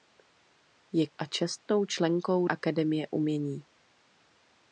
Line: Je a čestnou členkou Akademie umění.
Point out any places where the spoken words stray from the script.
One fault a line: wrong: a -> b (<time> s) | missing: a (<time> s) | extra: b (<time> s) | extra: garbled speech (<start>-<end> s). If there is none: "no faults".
no faults